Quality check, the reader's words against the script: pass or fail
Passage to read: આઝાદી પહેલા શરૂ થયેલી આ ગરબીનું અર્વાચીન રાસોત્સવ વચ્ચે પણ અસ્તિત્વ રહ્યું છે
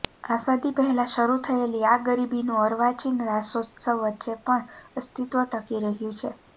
fail